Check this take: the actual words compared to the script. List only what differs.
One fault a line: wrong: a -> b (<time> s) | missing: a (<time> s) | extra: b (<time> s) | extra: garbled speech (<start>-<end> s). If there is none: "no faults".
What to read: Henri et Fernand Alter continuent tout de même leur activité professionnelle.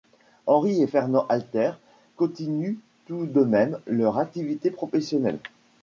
no faults